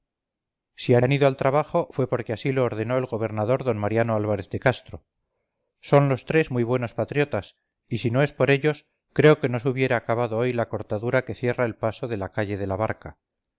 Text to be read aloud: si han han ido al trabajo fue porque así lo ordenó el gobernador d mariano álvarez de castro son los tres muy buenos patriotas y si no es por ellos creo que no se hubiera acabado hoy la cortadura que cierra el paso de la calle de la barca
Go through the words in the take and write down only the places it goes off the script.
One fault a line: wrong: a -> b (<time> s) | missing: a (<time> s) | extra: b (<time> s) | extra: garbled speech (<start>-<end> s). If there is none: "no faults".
no faults